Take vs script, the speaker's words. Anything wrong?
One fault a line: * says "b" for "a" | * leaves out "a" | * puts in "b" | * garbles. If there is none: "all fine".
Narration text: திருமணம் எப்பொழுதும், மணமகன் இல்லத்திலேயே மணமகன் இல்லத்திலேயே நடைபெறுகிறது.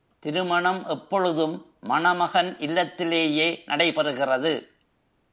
* leaves out "மணமகன் இல்லத்திலேயே"